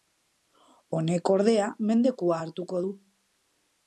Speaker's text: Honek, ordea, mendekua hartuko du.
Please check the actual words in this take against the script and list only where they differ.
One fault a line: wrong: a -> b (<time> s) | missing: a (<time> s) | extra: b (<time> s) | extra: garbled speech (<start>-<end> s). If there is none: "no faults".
no faults